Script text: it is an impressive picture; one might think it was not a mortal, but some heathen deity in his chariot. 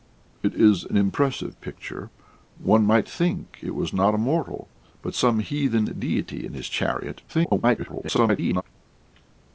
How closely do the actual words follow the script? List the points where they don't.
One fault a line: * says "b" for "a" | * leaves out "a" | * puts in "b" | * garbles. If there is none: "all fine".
* garbles